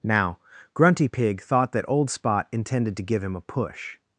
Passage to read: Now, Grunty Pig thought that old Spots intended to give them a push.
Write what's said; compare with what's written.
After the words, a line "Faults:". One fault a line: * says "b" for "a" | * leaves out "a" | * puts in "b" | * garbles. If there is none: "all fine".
Now, Grunty Pig thought that old Spot intended to give him a push.
Faults:
* says "Spot" for "Spots"
* says "him" for "them"